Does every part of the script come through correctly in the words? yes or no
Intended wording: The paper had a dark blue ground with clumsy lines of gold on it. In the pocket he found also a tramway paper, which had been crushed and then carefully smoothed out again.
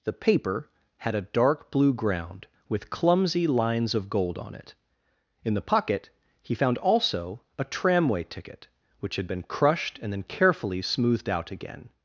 no